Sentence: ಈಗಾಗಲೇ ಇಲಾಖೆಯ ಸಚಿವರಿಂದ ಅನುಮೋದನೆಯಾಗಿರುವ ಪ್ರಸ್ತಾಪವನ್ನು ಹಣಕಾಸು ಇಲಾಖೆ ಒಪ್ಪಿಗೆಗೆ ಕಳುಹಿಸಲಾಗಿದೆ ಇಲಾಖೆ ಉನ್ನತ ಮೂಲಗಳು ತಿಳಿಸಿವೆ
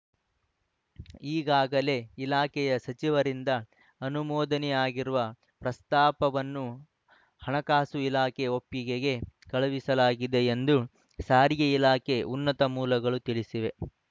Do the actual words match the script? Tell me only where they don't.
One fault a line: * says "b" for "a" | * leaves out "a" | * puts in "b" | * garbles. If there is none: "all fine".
* puts in "ಎಂದು ಸಾರಿಗೆ"